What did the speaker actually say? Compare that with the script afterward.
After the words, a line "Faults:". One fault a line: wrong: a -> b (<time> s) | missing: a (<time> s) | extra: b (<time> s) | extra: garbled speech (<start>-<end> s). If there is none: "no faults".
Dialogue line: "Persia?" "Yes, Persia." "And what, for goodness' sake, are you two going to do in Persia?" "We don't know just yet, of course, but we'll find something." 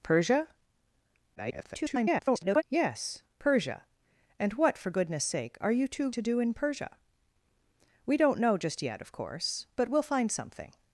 "Persia?" [garbled] "Yes, Persia." "And what, for goodness' sake, are you two to do in Persia?" "We don't know just yet, of course, but we'll find something."
Faults:
extra: garbled speech (1.4-2.6 s)
missing: going (6.1 s)